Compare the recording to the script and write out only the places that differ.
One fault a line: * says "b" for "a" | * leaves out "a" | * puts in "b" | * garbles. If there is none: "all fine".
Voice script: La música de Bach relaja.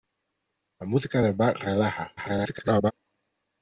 * garbles